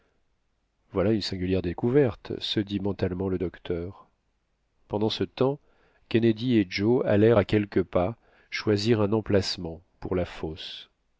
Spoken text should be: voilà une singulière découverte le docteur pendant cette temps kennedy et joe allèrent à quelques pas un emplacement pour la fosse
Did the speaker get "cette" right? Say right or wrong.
wrong